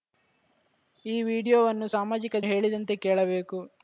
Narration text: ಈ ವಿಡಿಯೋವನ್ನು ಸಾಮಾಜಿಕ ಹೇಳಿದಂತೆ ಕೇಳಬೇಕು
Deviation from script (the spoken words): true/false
false